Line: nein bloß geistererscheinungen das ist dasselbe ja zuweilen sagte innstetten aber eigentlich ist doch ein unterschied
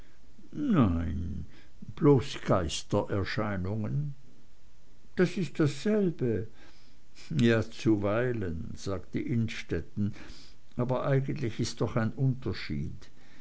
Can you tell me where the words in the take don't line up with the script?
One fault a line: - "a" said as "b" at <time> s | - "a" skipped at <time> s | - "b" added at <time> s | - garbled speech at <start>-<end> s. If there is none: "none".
none